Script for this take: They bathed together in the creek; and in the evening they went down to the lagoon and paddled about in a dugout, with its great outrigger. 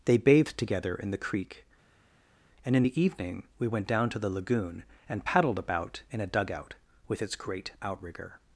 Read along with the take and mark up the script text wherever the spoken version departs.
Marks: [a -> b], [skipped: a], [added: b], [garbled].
They bathed together in the creek; and in the evening [they -> we] went down to the lagoon and paddled about in a dugout, with its great outrigger.